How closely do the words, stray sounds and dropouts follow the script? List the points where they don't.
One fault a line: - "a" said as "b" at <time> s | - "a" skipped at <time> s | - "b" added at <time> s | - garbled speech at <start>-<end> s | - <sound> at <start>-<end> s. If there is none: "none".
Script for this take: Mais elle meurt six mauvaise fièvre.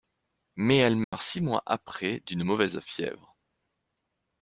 - dropout at 1.0-1.1 s
- "mois après d'une" added at 1.4 s